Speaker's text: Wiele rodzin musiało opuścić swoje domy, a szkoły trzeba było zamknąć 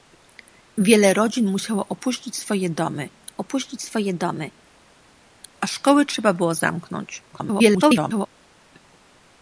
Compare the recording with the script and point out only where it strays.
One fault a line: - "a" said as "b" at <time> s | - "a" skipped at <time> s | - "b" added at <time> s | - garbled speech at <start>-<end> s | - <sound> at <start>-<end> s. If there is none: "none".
- "opuścić swoje domy" added at 3.4 s
- garbled speech at 7.3-8.3 s